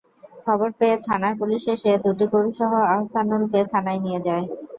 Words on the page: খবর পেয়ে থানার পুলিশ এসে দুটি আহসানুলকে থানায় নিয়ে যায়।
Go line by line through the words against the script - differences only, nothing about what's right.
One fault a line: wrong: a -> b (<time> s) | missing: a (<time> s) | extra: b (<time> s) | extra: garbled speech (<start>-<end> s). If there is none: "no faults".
extra: গরুসহ (2.3 s)